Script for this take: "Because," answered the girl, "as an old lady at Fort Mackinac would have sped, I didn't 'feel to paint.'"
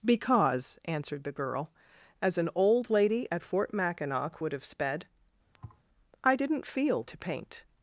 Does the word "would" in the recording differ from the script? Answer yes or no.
no